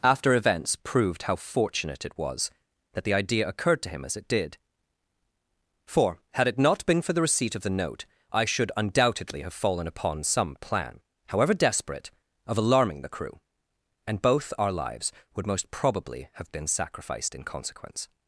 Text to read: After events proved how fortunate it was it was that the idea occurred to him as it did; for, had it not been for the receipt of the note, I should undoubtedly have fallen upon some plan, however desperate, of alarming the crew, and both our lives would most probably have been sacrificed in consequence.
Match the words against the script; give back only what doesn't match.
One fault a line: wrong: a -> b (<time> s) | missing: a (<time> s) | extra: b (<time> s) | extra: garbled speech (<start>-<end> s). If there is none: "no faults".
missing: it was (2.5 s)